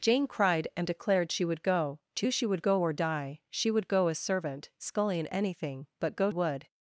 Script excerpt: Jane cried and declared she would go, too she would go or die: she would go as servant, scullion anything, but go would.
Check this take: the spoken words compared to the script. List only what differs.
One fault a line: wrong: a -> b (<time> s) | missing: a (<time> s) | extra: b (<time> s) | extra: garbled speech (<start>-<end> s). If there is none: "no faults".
no faults